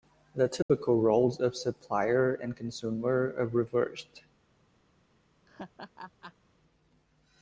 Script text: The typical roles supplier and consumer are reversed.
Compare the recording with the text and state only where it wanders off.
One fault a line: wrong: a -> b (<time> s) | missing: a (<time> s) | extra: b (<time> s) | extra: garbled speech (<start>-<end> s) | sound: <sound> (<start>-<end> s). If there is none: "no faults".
sound: dropout (0.6-0.7 s)
extra: of (1.4 s)
sound: laugh (5.5-6.3 s)